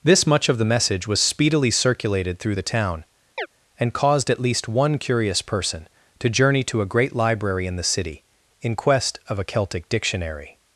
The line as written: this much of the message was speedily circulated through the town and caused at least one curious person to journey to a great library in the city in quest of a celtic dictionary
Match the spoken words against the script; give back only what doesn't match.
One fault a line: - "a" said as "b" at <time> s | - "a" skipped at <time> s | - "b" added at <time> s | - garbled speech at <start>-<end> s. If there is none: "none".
none